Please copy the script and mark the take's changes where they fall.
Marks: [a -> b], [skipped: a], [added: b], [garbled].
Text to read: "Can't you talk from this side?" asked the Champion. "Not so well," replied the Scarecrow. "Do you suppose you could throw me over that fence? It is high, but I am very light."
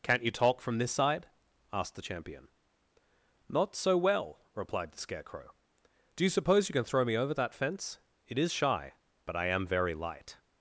"Can't you talk from this side?" asked the Champion. "Not so well," replied the Scarecrow. "Do you suppose you [could -> can] throw me over that fence? It is [high, -> shy] but I am very light."